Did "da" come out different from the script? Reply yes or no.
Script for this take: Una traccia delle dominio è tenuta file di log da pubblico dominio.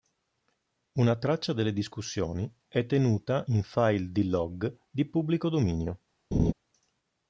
yes